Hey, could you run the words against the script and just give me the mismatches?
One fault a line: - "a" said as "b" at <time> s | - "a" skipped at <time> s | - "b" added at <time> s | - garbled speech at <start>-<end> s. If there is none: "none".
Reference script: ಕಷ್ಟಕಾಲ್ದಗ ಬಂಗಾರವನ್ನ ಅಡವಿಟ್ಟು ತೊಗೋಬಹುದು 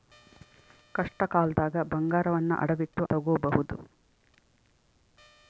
none